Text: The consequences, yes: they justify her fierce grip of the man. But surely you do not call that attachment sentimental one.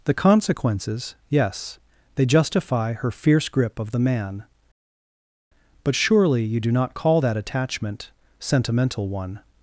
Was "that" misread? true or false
false